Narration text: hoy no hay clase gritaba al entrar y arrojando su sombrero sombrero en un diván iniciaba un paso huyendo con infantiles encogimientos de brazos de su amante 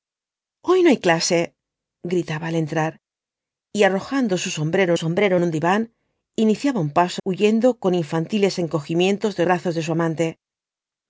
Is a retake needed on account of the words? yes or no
no